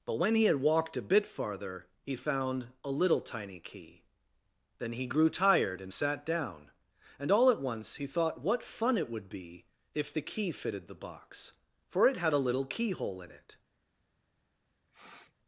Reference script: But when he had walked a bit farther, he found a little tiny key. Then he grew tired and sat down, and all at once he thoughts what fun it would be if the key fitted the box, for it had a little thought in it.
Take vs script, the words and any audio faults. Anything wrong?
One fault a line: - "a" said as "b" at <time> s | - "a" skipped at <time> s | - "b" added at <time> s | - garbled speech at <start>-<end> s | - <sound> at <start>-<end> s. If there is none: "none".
- "thoughts" said as "thought" at 8.1 s
- "thought" said as "keyhole" at 12.6 s
- sniff at 14.9-15.3 s